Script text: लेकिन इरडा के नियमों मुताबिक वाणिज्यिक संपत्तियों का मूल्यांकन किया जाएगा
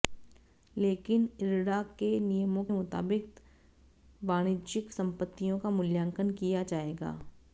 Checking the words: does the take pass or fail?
pass